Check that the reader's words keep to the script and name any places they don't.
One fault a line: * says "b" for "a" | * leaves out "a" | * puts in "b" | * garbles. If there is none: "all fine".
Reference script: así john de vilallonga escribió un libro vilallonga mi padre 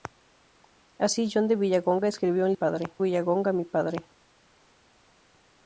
* says "padre" for "libro"